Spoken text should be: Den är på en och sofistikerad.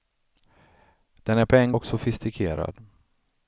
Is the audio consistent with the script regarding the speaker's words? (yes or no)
yes